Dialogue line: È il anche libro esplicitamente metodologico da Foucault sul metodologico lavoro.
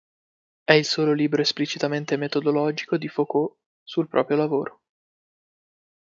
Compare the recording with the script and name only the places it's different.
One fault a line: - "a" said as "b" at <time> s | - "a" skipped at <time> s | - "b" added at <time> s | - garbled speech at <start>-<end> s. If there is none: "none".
- "anche" said as "solo" at 0.8 s
- "da" said as "di" at 3.0 s
- "metodologico" said as "proprio" at 4.1 s